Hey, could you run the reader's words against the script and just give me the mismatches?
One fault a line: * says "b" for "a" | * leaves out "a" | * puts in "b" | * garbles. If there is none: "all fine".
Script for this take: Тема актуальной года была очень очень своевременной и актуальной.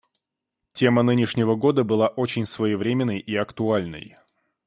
* says "нынешнего" for "актуальной"
* leaves out "очень"